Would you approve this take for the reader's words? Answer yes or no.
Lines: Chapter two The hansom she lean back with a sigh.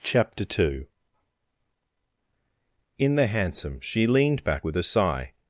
no